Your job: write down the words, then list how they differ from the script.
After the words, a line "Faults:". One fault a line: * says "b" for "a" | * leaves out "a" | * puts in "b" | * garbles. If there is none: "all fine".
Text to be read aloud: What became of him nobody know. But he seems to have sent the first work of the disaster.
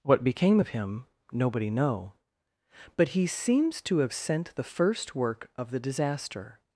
What became of him nobody know. But he seems to have sent the first work of the disaster.
Faults:
all fine